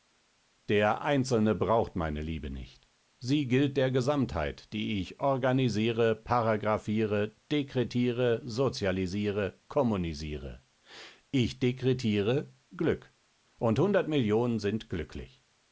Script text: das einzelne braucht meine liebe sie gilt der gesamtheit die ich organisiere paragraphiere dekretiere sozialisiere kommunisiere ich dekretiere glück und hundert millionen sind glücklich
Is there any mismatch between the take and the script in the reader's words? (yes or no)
yes